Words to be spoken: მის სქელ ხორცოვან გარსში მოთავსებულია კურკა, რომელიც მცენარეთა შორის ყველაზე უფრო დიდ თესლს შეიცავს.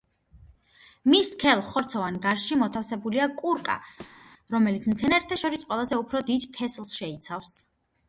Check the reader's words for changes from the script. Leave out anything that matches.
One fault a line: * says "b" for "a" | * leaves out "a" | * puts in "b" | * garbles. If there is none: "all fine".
all fine